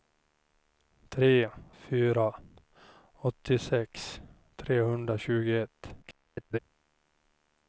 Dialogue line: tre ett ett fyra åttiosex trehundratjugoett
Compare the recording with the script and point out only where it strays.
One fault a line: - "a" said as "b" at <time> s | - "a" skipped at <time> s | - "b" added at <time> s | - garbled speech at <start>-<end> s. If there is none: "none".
- "ett ett" skipped at 1.5 s
- garbled speech at 6.0-6.6 s